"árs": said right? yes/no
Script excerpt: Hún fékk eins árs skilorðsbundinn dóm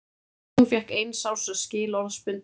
yes